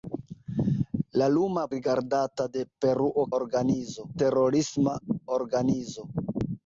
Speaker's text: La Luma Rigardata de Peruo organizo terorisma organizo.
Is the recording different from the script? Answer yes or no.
no